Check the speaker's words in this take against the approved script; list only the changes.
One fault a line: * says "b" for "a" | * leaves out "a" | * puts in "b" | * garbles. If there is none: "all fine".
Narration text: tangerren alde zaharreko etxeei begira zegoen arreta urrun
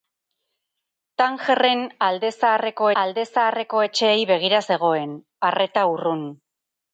* puts in "alde zaharreko"